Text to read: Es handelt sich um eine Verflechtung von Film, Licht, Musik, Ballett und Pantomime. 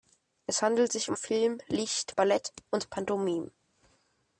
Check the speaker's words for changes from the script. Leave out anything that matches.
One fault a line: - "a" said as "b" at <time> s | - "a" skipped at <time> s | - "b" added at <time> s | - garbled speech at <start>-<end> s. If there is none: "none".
- "eine Verflechtung von" skipped at 1.2 s
- "Musik" skipped at 2.1 s